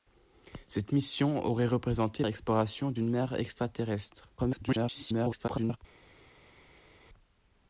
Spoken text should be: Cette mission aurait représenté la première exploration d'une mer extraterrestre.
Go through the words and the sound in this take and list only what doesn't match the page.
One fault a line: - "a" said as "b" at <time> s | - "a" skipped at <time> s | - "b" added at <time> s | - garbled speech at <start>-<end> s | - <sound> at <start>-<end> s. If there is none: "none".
- "la première" skipped at 2.2 s
- garbled speech at 4.4-5.8 s